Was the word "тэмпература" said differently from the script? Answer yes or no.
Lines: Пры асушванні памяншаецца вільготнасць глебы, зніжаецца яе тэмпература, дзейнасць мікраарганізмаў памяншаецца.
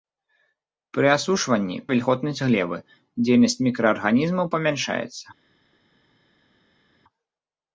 yes